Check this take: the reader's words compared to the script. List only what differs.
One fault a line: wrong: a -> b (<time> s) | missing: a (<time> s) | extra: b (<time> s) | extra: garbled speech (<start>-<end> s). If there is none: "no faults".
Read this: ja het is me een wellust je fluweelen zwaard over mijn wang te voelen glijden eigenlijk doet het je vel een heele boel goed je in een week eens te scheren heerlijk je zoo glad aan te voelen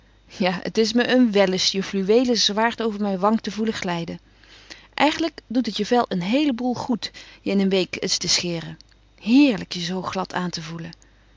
no faults